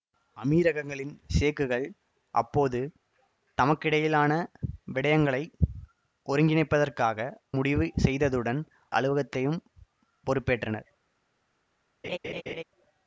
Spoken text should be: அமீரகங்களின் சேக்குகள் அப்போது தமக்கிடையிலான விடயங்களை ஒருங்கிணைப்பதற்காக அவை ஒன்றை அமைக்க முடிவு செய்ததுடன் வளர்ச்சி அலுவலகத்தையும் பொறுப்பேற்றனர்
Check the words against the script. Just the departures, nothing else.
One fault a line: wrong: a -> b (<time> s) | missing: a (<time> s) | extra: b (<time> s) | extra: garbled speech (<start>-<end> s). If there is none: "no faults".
missing: அவை ஒன்றை அமைக்க (7.3 s)
missing: வளர்ச்சி (8.6 s)